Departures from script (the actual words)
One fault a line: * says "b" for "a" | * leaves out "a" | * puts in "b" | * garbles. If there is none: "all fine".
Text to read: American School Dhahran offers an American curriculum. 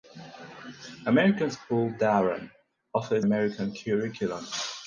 * leaves out "an"